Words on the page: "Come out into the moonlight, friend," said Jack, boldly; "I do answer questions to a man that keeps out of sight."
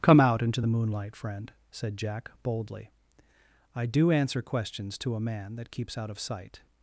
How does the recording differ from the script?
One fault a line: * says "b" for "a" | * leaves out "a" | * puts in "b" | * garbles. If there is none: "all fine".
all fine